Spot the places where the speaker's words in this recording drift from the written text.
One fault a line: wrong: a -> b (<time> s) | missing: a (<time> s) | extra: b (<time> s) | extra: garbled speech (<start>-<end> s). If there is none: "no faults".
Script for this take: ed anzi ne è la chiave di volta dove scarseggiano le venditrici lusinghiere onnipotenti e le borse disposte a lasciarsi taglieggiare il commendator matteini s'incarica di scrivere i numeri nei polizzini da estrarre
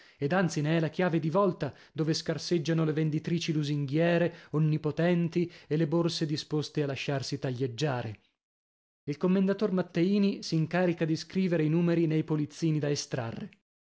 no faults